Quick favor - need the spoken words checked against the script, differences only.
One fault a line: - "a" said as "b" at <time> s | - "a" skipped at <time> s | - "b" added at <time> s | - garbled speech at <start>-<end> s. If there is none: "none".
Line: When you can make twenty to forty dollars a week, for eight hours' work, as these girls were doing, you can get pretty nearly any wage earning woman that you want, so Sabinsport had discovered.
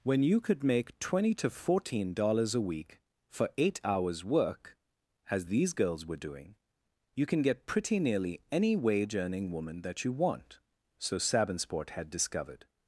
- "can" said as "could" at 0.4 s
- "forty" said as "fourteen" at 1.5 s